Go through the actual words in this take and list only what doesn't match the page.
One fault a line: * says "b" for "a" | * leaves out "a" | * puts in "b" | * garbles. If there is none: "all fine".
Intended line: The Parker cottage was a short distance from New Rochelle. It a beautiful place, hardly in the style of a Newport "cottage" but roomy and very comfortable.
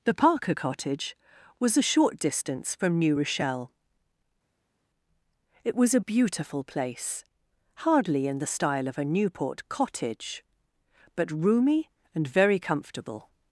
* puts in "was"